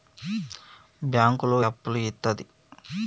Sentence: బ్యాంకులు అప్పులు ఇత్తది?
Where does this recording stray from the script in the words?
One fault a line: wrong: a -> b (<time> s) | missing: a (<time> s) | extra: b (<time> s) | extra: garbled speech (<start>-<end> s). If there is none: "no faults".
no faults